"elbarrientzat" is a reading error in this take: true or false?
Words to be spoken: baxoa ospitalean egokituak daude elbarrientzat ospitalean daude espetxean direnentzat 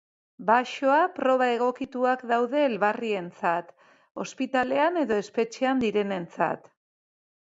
false